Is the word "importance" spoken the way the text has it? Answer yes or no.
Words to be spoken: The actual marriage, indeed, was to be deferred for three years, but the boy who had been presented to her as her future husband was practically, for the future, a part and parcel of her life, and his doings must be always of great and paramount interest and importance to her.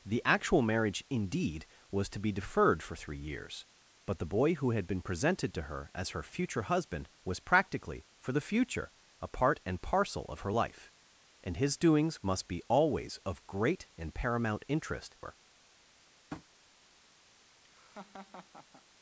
no